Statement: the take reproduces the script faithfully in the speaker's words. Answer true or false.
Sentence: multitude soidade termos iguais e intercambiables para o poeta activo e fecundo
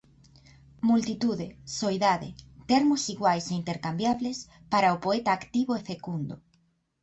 true